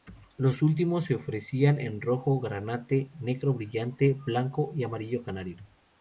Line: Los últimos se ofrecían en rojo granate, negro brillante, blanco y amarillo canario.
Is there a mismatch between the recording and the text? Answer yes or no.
no